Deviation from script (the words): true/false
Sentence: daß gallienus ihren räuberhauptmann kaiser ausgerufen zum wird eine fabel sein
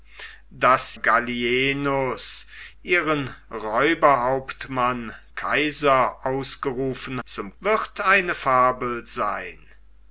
false